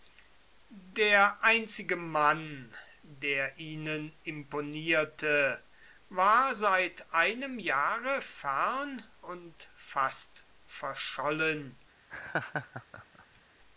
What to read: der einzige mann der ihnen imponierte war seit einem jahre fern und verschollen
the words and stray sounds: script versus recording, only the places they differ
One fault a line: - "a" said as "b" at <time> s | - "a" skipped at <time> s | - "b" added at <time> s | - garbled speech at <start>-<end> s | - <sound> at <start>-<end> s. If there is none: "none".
- "fast" added at 9.7 s
- laugh at 12.1-13.4 s